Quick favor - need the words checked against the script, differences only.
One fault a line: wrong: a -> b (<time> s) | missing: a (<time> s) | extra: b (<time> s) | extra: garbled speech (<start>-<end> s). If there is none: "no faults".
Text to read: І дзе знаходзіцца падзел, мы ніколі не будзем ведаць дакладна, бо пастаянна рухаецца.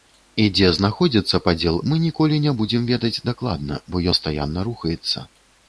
no faults